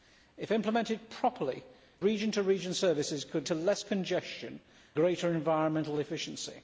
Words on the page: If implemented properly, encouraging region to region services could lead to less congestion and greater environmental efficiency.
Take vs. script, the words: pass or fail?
fail